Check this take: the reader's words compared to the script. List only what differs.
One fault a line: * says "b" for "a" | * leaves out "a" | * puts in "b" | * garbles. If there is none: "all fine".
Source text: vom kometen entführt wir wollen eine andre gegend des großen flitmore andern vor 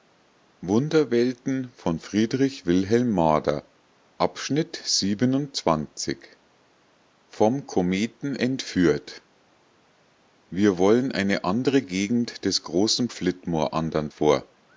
all fine